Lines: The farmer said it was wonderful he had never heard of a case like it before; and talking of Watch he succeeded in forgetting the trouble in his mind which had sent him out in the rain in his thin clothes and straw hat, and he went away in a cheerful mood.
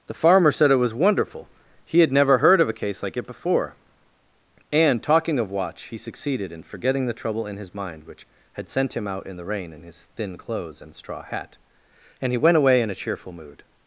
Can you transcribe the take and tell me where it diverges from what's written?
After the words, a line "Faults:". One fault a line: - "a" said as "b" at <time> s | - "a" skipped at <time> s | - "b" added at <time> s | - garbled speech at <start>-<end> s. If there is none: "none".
The farmer said it was wonderful he had never heard of a case like it before; and talking of Watch he succeeded in forgetting the trouble in his mind which had sent him out in the rain in his thin clothes and straw hat, and he went away in a cheerful mood.
Faults:
none